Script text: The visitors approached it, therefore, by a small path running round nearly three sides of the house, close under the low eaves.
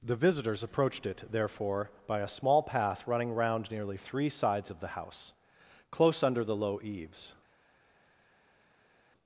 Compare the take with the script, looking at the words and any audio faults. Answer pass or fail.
pass